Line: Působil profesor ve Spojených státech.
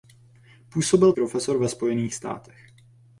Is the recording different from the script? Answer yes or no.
no